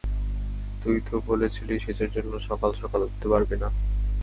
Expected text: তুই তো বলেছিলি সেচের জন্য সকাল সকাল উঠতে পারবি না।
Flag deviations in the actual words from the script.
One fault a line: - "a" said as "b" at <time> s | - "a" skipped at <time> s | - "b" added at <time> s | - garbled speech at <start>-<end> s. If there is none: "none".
none